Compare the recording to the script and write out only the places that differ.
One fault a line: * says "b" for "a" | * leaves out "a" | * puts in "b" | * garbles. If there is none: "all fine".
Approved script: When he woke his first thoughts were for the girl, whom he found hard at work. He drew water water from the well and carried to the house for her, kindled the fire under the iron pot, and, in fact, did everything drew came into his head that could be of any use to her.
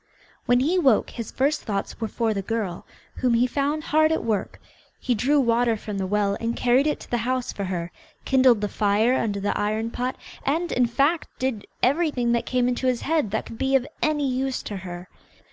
* leaves out "water"
* puts in "it"
* says "that" for "drew"